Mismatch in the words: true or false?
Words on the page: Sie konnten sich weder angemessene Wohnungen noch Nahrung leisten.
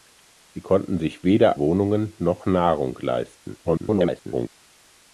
true